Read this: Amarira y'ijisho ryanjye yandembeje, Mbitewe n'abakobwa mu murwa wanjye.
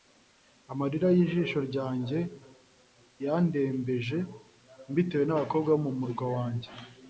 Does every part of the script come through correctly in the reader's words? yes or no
yes